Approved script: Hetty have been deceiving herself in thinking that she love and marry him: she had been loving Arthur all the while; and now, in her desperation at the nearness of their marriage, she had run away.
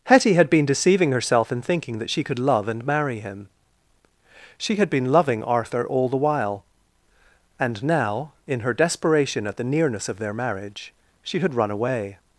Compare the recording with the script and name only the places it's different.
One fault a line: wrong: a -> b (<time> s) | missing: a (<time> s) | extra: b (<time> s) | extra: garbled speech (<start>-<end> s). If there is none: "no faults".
wrong: have -> had (0.3 s)
extra: could (2.2 s)